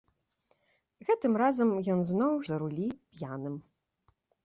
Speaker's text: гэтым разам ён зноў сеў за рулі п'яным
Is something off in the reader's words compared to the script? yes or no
yes